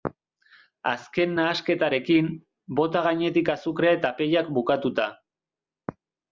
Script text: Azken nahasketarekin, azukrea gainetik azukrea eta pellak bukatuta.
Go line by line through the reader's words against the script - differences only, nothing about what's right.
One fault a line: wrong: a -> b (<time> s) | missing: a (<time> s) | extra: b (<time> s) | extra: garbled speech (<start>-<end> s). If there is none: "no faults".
wrong: azukrea -> bota (2.8 s)